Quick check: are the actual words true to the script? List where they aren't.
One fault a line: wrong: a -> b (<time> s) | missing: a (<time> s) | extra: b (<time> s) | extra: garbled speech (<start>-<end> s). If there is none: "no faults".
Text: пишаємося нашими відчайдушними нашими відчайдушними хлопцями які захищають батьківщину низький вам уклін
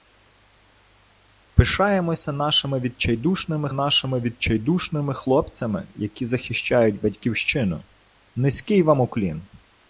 no faults